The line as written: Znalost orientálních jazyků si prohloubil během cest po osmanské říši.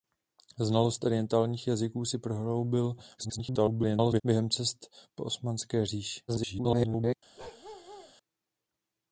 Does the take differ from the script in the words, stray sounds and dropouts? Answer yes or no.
yes